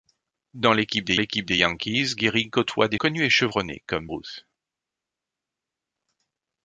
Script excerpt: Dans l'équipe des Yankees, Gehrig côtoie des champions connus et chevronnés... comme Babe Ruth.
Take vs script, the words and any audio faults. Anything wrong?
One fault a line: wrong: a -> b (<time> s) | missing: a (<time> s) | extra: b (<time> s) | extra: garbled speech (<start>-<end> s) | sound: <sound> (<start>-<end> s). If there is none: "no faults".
extra: l'équipe des (1.1 s)
missing: champions (3.0 s)
missing: Babe (4.1 s)